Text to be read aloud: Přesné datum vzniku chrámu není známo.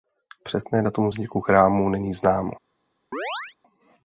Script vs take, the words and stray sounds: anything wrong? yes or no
yes